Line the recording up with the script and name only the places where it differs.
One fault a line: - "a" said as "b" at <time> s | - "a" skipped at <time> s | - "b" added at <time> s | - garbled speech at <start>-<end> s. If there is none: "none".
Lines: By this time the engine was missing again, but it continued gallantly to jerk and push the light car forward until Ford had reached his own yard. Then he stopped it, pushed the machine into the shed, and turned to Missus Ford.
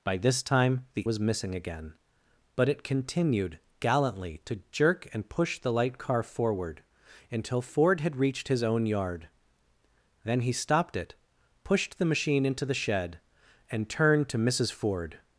- "engine" skipped at 1.0 s